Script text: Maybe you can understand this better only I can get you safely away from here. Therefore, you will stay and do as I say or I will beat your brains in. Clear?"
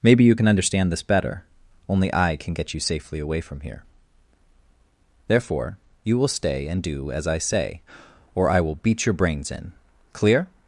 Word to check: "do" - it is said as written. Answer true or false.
true